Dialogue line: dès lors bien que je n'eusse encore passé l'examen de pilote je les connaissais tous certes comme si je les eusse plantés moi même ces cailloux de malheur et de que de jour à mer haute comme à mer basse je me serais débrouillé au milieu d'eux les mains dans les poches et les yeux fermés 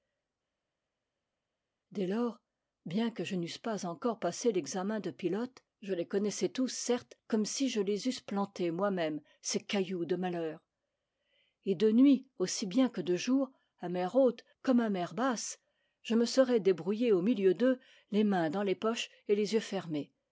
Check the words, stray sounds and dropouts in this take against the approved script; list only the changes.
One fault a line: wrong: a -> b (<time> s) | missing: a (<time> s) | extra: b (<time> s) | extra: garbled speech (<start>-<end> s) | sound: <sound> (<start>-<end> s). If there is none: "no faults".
extra: pas (3.6 s)
extra: nuit aussi bien (11.9 s)